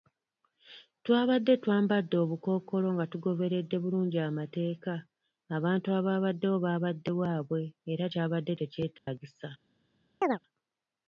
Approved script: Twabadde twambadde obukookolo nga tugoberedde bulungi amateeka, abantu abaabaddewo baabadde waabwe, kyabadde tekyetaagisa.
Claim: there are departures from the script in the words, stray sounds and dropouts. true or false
true